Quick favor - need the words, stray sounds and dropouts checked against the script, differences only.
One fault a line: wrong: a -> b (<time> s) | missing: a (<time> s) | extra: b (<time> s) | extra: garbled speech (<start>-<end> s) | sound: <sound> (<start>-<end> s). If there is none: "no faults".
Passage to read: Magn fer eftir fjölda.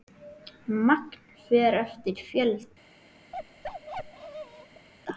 sound: bark (3.3-4.9 s)